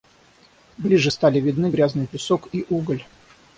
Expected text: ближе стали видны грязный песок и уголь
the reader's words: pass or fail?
pass